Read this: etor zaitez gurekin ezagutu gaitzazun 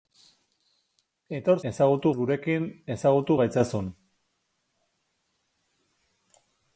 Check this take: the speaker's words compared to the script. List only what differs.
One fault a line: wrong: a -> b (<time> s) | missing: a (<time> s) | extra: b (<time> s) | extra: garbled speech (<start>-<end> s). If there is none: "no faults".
wrong: zaitez -> ezagutu (1.7 s)